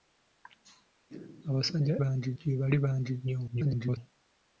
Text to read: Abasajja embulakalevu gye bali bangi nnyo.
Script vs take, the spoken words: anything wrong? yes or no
yes